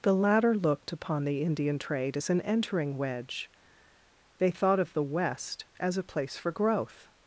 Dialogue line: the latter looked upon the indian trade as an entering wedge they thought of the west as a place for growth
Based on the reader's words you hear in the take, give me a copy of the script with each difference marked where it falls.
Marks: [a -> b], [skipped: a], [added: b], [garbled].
the latter looked upon the indian trade as an entering wedge they thought of the west as a place for growth